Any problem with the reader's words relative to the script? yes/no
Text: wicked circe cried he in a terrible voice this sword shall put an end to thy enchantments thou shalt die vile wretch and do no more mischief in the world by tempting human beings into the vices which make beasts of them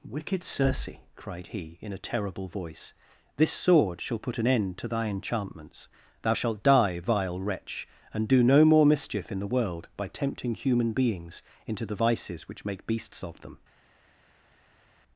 no